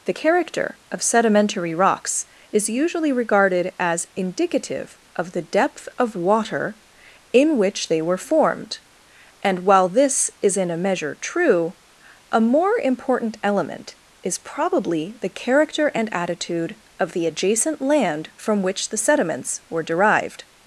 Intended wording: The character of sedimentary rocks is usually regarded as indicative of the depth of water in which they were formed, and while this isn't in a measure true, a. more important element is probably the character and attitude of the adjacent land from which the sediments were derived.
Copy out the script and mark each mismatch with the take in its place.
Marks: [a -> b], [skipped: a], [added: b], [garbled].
The character of sedimentary rocks is usually regarded as indicative of the depth of water in which they were formed, and while this [isn't -> is] in a measure true, a. more important element is probably the character and attitude of the adjacent land from which the sediments were derived.